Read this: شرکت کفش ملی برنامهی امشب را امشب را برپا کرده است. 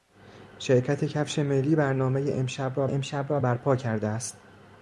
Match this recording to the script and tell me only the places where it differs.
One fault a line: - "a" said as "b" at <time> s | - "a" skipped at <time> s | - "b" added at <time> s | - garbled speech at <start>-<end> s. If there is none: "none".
none